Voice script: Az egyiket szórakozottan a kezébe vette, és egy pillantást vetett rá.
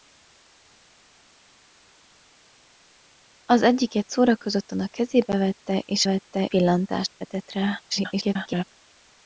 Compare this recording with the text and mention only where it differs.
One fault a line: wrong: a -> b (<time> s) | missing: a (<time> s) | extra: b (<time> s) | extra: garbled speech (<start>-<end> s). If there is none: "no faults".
wrong: egy -> vette (6.0 s)
extra: garbled speech (7.9-8.6 s)